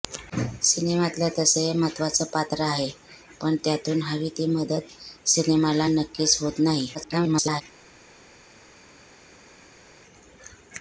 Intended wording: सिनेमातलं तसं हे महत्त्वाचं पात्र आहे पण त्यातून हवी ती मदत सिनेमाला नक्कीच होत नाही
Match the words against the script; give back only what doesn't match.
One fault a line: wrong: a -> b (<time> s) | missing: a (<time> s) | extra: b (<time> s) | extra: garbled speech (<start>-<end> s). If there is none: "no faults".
extra: garbled speech (6.9-7.6 s)